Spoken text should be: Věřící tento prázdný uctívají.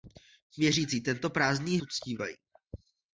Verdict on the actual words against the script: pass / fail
pass